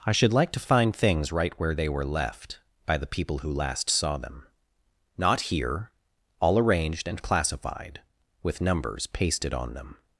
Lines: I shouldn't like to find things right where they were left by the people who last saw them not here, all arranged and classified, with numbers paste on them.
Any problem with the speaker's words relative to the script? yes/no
yes